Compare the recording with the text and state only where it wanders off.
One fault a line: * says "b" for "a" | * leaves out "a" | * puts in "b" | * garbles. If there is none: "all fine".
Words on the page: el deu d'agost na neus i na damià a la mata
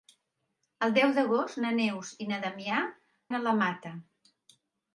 all fine